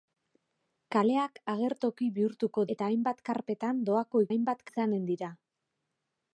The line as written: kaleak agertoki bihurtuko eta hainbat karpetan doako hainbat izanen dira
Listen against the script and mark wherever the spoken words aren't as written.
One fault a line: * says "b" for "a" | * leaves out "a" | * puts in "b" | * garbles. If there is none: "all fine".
all fine